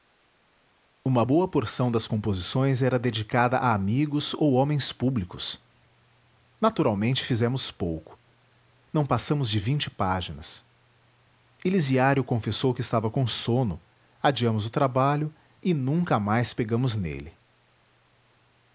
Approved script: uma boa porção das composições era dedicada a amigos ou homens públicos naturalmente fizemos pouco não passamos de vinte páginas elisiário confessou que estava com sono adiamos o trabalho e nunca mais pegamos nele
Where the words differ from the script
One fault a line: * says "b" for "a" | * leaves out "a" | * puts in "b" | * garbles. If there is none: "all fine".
all fine